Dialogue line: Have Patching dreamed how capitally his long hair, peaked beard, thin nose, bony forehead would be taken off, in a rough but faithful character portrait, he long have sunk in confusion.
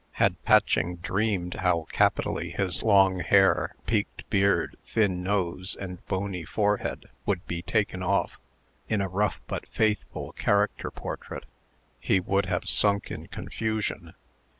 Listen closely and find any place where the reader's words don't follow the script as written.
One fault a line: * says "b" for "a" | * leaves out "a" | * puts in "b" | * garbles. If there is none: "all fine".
* says "Had" for "Have"
* puts in "and"
* says "would" for "long"